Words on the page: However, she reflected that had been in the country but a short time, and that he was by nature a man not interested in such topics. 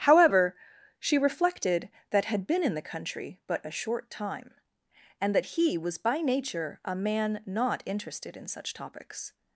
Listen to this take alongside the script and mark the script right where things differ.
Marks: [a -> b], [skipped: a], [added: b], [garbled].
However, she reflected that had been in the country but a short time, and that he was by nature a man not interested in such topics.